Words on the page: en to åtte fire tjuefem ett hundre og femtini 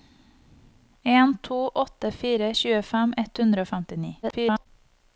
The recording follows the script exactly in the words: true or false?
false